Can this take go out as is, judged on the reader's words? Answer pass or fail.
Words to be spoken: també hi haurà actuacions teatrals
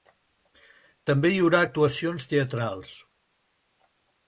pass